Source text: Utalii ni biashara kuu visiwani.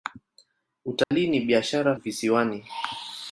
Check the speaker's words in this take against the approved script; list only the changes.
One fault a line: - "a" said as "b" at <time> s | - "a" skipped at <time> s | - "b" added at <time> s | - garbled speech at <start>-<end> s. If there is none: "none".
- "kuu" skipped at 1.9 s